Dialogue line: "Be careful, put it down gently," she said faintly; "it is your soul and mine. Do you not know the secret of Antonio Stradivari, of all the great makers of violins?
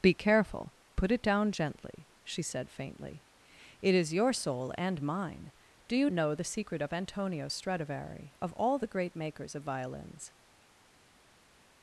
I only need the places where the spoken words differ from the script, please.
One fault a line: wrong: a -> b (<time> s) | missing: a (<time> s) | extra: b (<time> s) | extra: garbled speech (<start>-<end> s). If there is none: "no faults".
missing: not (6.1 s)